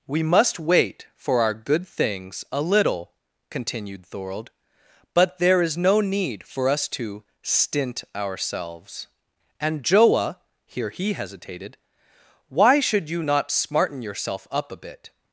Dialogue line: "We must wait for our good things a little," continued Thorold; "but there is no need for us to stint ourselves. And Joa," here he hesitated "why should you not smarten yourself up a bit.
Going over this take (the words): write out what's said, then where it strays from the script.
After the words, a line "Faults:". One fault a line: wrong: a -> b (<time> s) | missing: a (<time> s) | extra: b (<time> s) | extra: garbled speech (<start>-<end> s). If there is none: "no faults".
"We must wait for our good things a little," continued Thorold; "but there is no need for us to stint ourselves. And Joa," here he hesitated "why should you not smarten yourself up a bit.
Faults:
no faults